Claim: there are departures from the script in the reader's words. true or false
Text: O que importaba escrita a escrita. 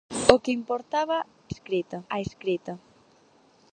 false